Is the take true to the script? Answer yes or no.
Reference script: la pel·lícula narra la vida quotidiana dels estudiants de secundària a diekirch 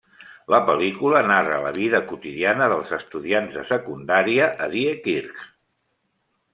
yes